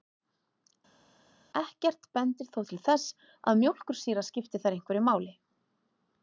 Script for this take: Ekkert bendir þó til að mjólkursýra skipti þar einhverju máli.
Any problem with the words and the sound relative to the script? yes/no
yes